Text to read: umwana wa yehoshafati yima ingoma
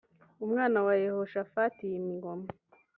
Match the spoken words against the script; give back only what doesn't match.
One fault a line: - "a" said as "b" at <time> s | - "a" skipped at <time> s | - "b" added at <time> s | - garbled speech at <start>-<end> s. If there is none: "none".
none